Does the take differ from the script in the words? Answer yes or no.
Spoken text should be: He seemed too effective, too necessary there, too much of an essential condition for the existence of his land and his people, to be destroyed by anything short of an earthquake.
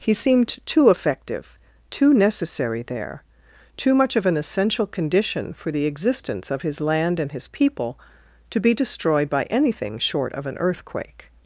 no